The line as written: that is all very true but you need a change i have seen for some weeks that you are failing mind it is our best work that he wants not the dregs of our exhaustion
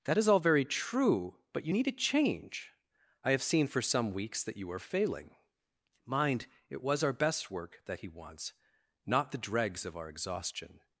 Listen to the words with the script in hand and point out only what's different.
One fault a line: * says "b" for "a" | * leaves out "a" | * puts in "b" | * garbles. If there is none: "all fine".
* says "was" for "is"